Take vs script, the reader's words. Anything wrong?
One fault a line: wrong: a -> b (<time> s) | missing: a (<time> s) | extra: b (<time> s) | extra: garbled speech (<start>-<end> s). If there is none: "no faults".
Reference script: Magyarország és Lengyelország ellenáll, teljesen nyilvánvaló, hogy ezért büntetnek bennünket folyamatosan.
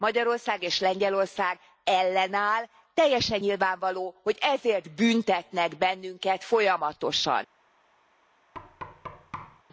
no faults